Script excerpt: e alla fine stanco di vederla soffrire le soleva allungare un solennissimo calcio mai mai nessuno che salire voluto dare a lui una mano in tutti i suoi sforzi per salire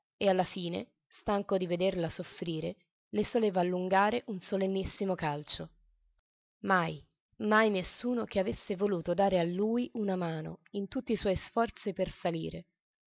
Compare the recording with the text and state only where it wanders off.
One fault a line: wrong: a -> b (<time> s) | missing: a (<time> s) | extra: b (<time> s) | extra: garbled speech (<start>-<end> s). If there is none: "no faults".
wrong: salire -> avesse (8.4 s)